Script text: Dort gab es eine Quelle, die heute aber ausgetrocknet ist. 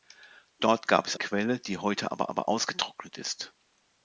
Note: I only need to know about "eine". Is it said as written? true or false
false